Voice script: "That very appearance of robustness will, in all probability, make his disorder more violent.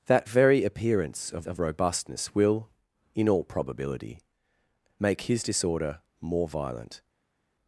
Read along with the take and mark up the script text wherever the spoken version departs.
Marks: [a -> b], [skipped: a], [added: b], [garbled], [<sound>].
"That very appearance of [added: of] robustness will, in all probability, make his disorder more violent.